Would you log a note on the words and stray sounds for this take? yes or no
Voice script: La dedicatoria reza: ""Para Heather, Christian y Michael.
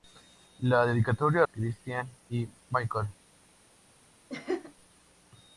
yes